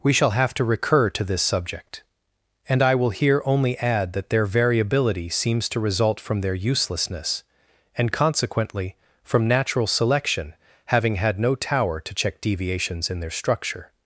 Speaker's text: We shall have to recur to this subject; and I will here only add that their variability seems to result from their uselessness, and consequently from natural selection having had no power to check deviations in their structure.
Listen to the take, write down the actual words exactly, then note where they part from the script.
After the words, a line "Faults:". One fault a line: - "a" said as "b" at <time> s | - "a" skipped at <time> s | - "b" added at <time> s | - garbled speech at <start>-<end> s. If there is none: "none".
We shall have to recur to this subject; and I will here only add that their variability seems to result from their uselessness, and consequently from natural selection having had no tower to check deviations in their structure.
Faults:
- "power" said as "tower" at 11.6 s